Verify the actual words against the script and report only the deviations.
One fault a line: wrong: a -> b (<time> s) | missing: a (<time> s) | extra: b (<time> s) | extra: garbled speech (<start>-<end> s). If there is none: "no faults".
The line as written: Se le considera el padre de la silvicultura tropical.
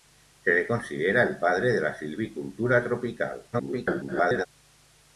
extra: garbled speech (3.5-4.5 s)